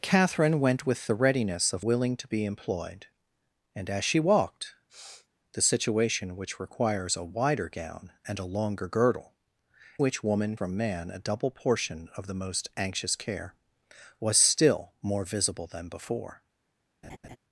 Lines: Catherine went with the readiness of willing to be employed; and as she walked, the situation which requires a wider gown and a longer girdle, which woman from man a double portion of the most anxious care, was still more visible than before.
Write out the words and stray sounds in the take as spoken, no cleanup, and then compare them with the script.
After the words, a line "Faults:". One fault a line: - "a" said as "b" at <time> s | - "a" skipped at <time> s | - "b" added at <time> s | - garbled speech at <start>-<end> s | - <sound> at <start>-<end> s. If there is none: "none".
Catherine went with the readiness of willing to be employed; and as she walked, the situation which requires a wider gown and a longer girdle, which woman from man a double portion of the most anxious care, was still more visible than before.
Faults:
- sniff at 4.9-5.3 s
- laugh at 17.0-17.4 s